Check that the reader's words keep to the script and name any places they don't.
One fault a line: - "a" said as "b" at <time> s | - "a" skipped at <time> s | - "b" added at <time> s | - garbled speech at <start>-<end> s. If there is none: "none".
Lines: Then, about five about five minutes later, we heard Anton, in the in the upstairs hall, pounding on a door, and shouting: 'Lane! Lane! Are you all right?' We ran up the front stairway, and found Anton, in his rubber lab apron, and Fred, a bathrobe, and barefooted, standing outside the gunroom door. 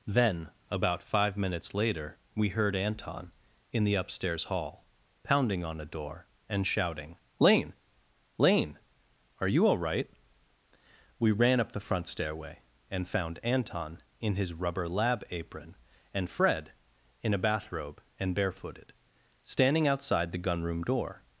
- "about five" skipped at 1.4 s
- "in the" skipped at 4.0 s
- "in" added at 17.2 s